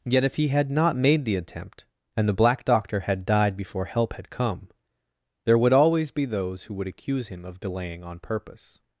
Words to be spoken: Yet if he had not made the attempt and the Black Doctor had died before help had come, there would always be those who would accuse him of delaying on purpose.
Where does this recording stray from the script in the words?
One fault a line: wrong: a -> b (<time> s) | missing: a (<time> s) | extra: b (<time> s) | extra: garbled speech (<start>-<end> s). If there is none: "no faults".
no faults